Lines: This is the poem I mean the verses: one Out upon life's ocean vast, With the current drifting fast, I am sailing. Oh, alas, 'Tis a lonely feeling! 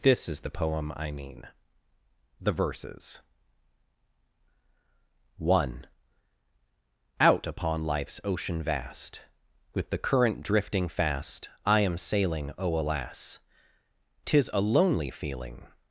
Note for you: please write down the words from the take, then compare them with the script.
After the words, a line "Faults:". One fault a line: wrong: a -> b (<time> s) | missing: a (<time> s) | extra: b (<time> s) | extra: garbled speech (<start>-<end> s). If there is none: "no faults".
This is the poem I mean the verses: one Out upon life's ocean vast, With the current drifting fast, I am sailing. Oh, alas, 'Tis a lonely feeling!
Faults:
no faults